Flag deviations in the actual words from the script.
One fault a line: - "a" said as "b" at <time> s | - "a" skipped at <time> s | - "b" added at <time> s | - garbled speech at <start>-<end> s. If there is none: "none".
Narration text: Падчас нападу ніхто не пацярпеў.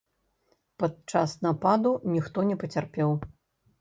none